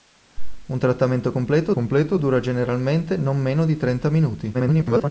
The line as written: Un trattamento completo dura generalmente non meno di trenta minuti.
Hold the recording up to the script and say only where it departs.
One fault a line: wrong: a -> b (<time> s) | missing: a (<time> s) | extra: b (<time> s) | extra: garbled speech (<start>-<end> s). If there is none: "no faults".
extra: completo (1.7 s)
extra: garbled speech (4.5-5.1 s)